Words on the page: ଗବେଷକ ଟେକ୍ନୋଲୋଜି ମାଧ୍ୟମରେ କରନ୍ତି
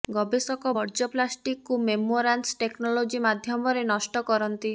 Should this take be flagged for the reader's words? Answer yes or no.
yes